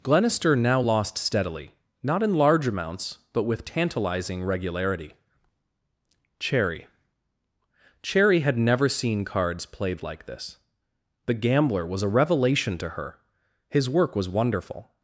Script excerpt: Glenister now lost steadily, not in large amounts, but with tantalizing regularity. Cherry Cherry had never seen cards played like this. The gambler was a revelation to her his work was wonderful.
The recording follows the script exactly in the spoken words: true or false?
true